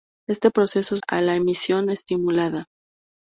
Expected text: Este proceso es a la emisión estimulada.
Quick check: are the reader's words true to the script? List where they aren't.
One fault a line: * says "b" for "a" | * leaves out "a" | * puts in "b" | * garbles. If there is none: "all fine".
all fine